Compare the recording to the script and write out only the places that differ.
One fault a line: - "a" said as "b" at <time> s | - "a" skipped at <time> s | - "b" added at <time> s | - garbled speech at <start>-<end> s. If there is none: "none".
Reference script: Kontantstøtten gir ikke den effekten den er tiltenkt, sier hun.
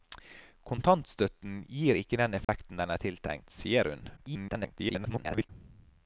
- garbled speech at 4.2-5.5 s